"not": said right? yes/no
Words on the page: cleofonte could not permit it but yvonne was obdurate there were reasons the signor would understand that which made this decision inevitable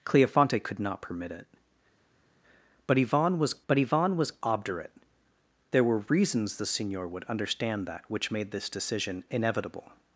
yes